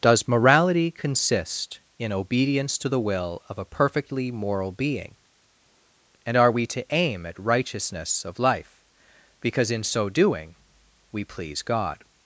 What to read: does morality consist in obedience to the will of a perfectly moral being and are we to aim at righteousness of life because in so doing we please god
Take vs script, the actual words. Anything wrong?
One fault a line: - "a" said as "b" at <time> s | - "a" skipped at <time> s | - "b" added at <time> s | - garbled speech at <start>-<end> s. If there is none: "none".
none